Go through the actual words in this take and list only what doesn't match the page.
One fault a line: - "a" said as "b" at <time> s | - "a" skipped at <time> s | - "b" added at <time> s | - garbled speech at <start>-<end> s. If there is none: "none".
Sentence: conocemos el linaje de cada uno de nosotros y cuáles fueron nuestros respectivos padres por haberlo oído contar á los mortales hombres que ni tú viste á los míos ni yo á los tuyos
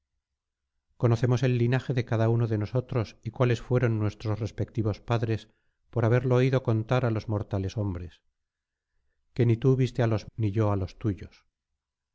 - "míos" skipped at 10.3 s